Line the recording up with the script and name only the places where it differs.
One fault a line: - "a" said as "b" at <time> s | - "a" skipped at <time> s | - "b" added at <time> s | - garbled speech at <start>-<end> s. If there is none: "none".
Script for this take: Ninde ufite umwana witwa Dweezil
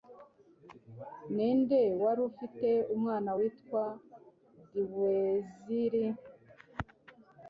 - "wari" added at 2.0 s